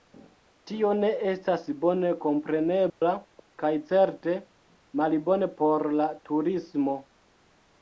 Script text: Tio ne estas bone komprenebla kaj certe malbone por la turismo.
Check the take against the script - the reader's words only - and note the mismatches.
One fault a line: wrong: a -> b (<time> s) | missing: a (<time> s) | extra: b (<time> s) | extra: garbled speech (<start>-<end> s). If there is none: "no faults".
no faults